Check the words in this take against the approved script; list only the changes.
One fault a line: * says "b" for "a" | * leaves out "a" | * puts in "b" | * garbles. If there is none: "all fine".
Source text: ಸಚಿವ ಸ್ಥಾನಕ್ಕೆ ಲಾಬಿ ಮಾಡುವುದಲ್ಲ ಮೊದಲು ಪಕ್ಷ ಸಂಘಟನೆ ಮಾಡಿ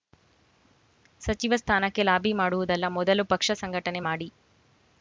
all fine